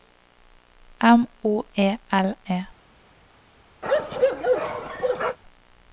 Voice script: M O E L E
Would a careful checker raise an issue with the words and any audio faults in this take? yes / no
yes